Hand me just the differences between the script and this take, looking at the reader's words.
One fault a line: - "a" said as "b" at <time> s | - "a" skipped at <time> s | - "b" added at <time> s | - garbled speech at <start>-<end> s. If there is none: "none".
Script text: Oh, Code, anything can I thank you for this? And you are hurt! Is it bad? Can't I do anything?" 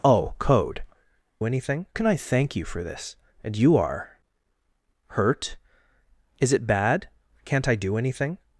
none